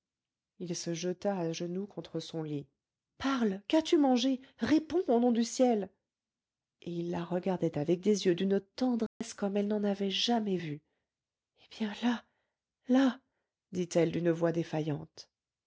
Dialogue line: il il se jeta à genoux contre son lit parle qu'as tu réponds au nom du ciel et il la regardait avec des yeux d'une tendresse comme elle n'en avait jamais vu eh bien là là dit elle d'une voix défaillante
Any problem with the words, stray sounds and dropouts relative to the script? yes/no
yes